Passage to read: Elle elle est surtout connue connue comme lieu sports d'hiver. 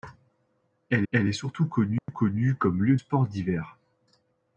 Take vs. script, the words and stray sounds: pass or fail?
fail